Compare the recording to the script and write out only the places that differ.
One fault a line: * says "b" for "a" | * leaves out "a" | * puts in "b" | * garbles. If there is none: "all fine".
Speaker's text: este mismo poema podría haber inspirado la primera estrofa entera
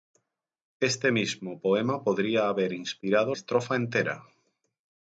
* leaves out "la primera"